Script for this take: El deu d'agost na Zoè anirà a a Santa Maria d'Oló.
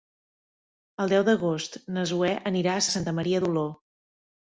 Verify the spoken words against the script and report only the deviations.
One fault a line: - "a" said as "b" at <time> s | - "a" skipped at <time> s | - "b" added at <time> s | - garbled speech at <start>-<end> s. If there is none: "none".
none